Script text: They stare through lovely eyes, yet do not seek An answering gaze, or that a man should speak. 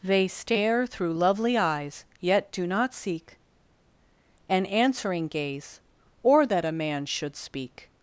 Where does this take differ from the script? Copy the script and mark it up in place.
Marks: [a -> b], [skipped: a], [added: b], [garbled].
They stare through lovely eyes, yet do not seek An answering gaze, or that a man should speak.